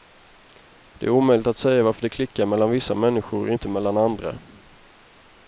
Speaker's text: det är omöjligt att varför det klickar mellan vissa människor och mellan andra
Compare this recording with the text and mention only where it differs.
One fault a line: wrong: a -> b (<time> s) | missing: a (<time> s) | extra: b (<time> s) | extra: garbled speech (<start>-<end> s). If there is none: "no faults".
extra: säga (1.6 s)
extra: inte (3.5 s)